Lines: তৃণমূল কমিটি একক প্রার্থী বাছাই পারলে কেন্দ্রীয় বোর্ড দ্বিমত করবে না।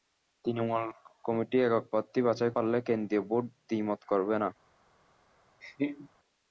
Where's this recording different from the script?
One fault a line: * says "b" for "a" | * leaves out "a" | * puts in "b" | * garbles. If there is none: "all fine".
all fine